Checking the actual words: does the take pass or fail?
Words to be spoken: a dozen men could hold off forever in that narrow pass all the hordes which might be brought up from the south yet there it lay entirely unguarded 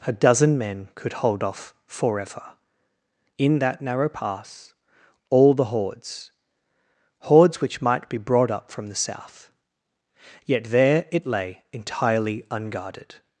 fail